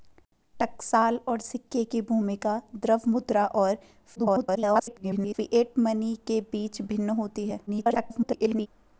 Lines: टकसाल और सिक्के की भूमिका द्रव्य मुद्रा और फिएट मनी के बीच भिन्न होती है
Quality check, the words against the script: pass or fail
fail